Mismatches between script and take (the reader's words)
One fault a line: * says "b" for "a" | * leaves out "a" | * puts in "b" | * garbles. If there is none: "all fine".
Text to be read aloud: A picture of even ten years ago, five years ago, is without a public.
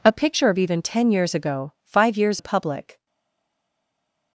* leaves out "ago is without"